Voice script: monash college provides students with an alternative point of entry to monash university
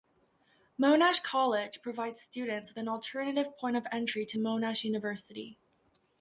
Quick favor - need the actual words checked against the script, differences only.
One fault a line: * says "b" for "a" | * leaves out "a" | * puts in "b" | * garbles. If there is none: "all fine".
all fine